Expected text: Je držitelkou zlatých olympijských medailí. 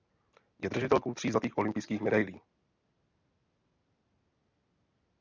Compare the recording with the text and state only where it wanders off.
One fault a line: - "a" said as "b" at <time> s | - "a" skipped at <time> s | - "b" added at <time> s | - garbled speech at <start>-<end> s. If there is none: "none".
- "tří" added at 1.1 s